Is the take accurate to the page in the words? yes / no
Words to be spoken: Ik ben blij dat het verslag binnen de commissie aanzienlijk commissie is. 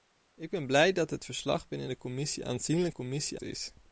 yes